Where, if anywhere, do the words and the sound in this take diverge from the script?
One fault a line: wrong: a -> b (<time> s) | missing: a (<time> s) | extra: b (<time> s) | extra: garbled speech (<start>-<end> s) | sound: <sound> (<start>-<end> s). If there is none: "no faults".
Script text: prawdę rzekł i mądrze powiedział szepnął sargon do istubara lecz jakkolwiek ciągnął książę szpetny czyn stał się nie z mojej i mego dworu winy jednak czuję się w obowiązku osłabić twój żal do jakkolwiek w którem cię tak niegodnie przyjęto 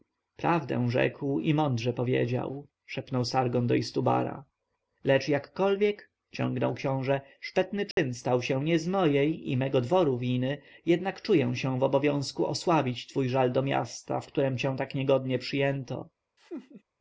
sound: dropout (7.9-8.0 s)
wrong: jakkolwiek -> miasta (13.6 s)
sound: laugh (16.4-16.8 s)